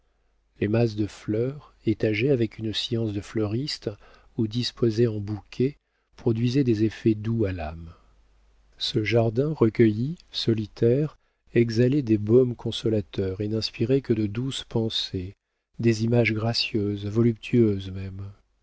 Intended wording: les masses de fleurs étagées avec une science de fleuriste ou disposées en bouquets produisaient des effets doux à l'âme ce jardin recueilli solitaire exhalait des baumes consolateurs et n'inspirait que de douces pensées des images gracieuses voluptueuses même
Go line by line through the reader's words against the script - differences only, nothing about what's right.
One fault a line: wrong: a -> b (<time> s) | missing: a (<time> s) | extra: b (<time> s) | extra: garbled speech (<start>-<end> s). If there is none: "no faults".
no faults